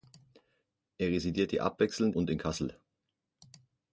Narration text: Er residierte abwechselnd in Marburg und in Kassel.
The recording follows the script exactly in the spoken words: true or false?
false